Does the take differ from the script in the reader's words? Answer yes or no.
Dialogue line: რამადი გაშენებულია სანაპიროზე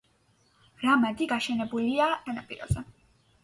no